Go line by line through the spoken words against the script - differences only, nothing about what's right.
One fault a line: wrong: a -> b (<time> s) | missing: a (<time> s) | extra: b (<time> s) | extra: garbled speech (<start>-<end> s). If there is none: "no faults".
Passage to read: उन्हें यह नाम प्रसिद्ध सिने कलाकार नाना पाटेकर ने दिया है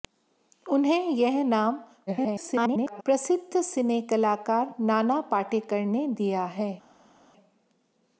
extra: garbled speech (2.1-3.0 s)